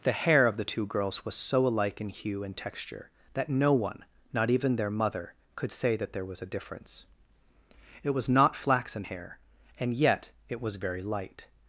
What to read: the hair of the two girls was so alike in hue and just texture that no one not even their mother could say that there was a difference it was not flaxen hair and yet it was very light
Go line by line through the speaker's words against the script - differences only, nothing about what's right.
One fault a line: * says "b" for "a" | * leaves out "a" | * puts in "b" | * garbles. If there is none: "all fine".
* leaves out "just"